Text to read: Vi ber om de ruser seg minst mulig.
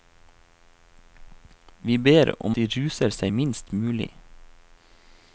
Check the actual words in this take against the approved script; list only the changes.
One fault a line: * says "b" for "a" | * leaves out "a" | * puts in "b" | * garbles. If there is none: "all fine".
all fine